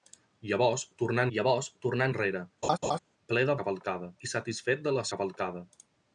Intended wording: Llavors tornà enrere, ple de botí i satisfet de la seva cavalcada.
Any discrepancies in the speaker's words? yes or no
yes